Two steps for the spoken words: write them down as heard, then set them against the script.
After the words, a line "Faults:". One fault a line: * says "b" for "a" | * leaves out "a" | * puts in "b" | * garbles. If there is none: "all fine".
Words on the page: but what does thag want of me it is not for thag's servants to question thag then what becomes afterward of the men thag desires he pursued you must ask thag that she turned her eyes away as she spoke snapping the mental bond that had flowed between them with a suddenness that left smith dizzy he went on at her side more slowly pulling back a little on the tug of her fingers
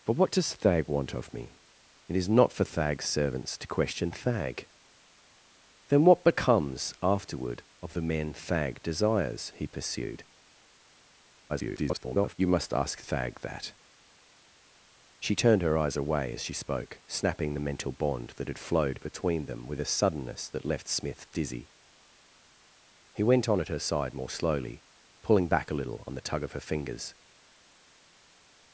but what does thag want of me it is not for thag's servants to question thag then what becomes afterward of the men thag desires he pursued [garbled] you must ask thag that she turned her eyes away as she spoke snapping the mental bond that had flowed between them with a suddenness that left smith dizzy he went on at her side more slowly pulling back a little on the tug of her fingers
Faults:
* garbles